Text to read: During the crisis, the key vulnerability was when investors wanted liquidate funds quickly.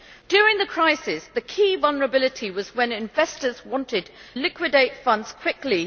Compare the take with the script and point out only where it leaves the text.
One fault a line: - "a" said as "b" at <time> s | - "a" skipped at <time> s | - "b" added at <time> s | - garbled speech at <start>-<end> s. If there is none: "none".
none